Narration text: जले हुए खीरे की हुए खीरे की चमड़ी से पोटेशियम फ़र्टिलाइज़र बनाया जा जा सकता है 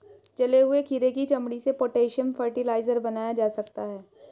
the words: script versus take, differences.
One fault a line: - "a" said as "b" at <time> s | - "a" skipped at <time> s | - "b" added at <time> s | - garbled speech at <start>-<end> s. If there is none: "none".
- "हुए खीरे की" skipped at 1.2 s
- "जा" skipped at 3.5 s